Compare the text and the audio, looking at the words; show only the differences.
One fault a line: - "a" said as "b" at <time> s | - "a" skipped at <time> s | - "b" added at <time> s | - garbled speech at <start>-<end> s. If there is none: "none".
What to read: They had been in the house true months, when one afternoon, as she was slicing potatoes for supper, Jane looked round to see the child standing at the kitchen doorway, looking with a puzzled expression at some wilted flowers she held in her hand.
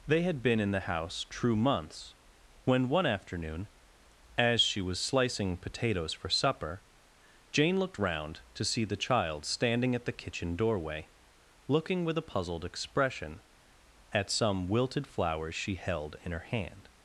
none